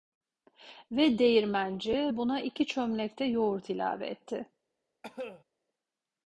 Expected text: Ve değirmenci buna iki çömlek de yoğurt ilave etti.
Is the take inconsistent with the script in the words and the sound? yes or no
yes